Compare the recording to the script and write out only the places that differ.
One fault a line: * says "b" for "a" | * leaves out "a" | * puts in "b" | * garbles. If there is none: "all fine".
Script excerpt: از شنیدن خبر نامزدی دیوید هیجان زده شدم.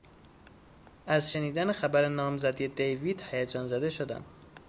all fine